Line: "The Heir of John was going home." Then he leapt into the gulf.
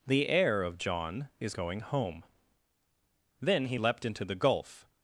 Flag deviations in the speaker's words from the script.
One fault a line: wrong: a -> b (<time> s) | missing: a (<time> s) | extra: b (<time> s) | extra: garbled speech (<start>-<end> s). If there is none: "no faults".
wrong: was -> is (1.4 s)